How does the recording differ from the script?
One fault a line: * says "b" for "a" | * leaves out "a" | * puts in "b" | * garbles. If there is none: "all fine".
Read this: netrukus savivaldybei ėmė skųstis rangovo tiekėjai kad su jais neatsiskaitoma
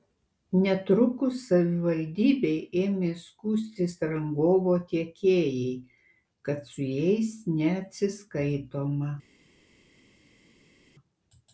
all fine